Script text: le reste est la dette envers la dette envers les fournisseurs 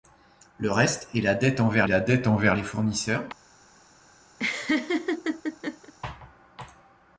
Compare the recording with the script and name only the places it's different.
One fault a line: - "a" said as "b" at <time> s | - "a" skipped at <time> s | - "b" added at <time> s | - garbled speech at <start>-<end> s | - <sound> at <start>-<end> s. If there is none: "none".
- laugh at 4.4-5.9 s